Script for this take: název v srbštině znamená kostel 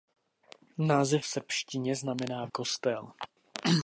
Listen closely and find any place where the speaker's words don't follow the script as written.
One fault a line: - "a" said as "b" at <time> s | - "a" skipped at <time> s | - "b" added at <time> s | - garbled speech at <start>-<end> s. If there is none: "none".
none